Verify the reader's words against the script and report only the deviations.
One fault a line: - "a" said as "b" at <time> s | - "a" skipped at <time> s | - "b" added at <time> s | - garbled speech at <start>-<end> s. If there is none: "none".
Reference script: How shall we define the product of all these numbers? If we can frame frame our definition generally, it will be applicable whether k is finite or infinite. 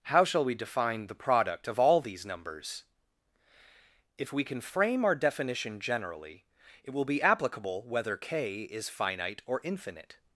- "frame" skipped at 5.0 s